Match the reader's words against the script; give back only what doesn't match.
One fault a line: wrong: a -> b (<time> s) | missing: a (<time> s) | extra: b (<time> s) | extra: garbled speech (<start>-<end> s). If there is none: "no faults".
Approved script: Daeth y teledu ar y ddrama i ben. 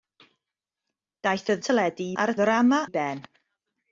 no faults